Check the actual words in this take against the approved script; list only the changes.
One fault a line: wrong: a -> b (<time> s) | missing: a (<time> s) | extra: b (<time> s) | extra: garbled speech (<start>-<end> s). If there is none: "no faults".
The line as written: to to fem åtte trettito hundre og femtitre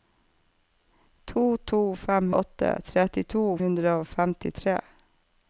no faults